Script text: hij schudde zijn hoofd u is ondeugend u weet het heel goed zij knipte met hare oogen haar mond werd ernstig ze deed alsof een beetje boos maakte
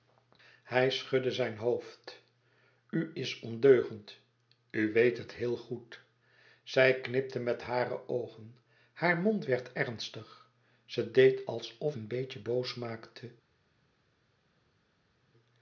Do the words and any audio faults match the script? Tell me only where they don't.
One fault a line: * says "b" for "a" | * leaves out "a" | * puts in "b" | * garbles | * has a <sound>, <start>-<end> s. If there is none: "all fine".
all fine